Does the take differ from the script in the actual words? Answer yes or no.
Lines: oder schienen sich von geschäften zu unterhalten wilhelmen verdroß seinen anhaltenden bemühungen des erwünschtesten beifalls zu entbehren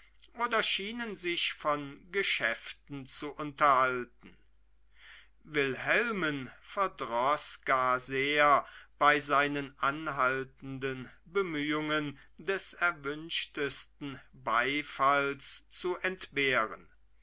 yes